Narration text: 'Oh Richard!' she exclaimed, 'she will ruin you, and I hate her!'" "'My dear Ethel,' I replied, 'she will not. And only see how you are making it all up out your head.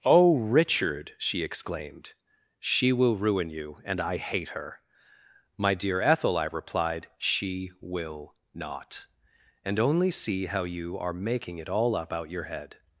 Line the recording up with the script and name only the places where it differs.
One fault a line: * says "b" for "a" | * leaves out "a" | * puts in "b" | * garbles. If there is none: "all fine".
all fine